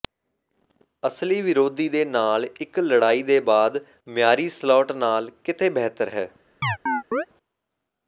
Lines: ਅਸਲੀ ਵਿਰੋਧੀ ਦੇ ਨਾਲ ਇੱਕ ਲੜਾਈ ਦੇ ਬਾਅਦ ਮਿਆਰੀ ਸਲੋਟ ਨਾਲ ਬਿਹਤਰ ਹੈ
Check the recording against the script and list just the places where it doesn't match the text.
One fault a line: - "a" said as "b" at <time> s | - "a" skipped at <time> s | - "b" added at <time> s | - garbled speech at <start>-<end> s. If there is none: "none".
- "ਕਿਤੇ" added at 5.4 s